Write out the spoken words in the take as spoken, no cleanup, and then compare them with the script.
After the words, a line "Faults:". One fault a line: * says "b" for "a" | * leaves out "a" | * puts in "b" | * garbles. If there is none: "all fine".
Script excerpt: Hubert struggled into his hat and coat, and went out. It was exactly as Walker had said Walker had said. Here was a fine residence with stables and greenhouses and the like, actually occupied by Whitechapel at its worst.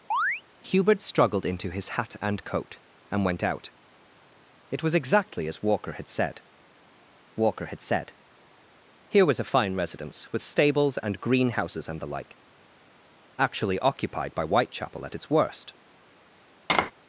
Hubert struggled into his hat and coat, and went out. It was exactly as Walker had said Walker had said. Here was a fine residence with stables and greenhouses and the like, actually occupied by Whitechapel at its worst.
Faults:
all fine